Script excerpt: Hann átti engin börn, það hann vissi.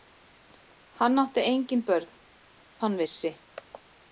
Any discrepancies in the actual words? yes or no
yes